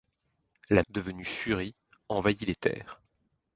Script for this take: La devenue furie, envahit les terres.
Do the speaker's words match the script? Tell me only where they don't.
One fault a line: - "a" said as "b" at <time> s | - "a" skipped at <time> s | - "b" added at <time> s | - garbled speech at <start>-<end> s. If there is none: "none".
none